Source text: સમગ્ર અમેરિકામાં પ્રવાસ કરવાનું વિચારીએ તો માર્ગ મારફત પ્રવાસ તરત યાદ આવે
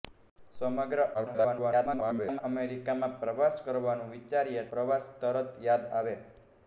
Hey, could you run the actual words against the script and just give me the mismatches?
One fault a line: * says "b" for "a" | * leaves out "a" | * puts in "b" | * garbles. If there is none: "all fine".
* garbles
* leaves out "તો માર્ગ મારફત"